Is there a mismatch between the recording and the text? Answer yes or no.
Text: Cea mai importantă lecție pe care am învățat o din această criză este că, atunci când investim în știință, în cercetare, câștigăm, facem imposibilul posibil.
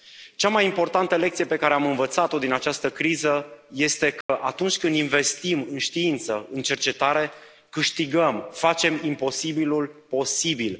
no